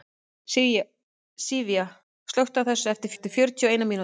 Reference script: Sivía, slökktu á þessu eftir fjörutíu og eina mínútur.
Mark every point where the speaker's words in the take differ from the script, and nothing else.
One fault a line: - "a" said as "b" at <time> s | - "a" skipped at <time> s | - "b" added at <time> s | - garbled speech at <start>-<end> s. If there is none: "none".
- "eftir" added at 3.1 s